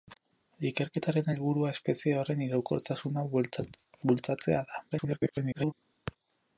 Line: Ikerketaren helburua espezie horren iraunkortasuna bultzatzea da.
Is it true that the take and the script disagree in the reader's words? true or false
true